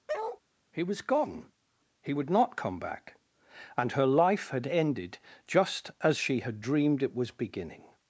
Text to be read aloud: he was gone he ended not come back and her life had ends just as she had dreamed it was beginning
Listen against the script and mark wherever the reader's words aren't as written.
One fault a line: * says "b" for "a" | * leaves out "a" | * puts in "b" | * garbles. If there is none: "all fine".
* says "would" for "ended"
* says "ended" for "ends"